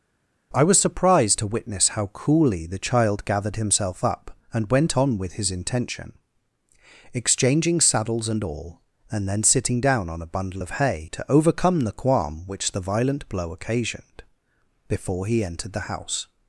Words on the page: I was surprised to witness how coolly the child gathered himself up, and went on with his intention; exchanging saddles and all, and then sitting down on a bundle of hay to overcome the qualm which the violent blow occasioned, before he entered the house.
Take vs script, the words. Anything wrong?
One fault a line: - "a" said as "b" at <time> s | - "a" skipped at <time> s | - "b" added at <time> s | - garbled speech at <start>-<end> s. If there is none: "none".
none